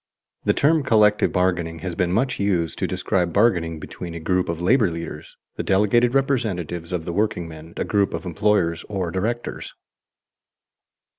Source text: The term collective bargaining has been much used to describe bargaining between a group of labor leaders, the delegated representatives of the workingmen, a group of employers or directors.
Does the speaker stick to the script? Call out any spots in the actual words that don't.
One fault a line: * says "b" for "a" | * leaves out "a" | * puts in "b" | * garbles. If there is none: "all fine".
all fine